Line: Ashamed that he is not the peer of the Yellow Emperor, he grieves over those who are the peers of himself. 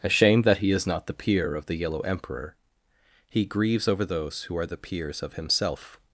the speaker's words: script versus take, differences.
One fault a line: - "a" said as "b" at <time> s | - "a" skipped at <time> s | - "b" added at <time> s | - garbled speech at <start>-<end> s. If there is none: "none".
none